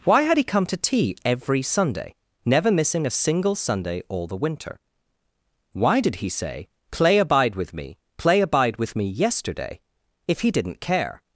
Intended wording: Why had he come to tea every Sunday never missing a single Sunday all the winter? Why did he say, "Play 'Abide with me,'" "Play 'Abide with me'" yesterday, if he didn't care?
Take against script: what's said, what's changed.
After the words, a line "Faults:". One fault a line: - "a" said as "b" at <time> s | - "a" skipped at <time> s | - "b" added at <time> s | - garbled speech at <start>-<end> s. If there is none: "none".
Why had he come to tea every Sunday never missing a single Sunday all the winter? Why did he say, "Play 'Abide with me,'" "Play 'Abide with me'" yesterday, if he didn't care?
Faults:
none